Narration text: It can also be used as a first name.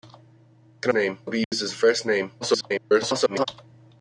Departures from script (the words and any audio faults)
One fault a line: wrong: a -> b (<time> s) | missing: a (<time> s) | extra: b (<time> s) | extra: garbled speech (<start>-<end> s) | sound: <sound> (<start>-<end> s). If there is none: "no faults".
wrong: also -> name (0.9 s)
sound: dropout (1.4-1.5 s)
extra: garbled speech (2.4-3.5 s)